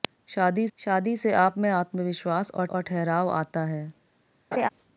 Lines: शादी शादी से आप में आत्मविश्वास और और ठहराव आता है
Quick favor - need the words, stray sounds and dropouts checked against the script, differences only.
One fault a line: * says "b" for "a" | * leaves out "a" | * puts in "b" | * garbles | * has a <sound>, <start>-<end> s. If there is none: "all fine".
* has a laugh, 4.5-4.7 s